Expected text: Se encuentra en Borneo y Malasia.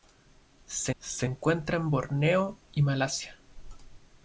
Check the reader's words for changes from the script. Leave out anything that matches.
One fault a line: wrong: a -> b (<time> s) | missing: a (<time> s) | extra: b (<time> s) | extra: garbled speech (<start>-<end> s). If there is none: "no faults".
extra: se (1.0 s)